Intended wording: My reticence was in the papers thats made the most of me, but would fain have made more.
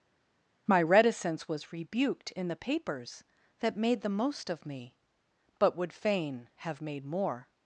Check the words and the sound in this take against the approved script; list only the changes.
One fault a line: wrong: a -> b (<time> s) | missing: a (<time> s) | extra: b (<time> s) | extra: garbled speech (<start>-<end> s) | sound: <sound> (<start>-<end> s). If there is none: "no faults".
extra: rebuked (1.7 s)
wrong: thats -> that (3.6 s)